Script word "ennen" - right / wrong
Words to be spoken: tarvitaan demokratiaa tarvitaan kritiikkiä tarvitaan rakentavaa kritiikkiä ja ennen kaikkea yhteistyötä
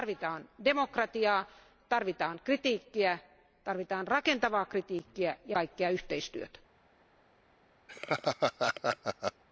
wrong